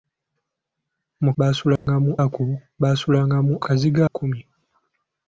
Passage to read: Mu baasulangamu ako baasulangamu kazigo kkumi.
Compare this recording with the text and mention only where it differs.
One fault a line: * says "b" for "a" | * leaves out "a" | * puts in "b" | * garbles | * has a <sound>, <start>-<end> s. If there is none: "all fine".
* has a dropout, 1.8-1.9 s